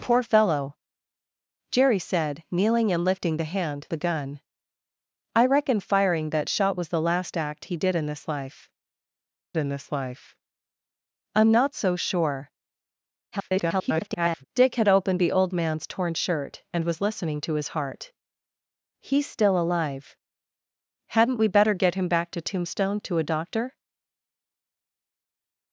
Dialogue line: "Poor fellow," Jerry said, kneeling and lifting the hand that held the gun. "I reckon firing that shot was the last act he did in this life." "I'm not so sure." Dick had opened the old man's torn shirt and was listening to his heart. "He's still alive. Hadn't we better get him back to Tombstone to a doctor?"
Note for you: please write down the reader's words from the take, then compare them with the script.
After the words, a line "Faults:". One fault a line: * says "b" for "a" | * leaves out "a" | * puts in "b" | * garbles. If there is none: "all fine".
"Poor fellow," Jerry said, kneeling and lifting the hand the gun. "I reckon firing that shot was the last act he did in this life in this life." "I'm not so sure." [garbled] Dick had opened the old man's torn shirt and was listening to his heart. "He's still alive. Hadn't we better get him back to Tombstone to a doctor?"
Faults:
* leaves out "that held"
* puts in "in this life"
* garbles